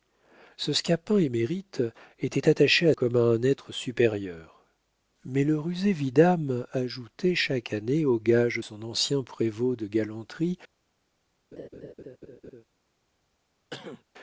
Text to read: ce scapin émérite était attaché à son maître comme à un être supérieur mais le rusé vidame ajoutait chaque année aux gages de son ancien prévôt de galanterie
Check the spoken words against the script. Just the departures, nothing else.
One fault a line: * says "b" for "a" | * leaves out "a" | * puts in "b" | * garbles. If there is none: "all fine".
* leaves out "son maître"
* leaves out "de"